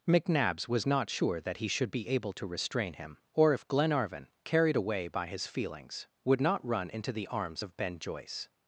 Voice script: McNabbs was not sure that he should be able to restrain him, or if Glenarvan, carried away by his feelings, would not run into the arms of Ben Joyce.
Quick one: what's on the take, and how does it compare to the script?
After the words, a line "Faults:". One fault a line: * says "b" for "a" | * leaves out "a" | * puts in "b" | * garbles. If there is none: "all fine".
McNabbs was not sure that he should be able to restrain him, or if Glenarvan, carried away by his feelings, would not run into the arms of Ben Joyce.
Faults:
all fine